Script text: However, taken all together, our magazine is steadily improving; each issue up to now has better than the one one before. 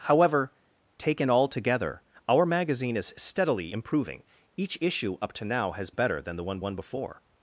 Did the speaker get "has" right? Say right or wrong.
right